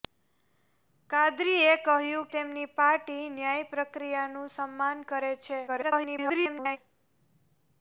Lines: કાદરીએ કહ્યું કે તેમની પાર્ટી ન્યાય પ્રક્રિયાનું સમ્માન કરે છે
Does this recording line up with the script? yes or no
no